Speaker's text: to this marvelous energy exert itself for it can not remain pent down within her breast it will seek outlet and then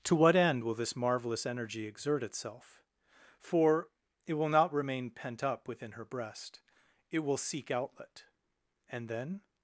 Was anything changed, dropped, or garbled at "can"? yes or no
yes